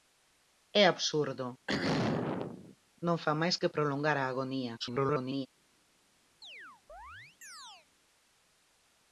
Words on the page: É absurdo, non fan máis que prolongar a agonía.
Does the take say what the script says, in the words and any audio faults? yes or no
no